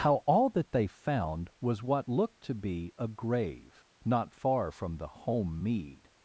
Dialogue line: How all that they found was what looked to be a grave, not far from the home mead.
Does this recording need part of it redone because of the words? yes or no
no